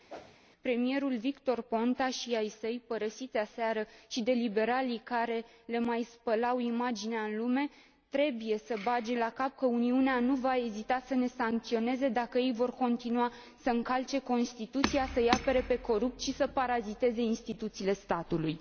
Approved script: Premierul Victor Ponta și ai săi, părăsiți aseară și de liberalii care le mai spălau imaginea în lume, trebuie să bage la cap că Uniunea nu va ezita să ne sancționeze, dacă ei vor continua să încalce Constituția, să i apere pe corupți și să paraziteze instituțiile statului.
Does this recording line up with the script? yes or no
yes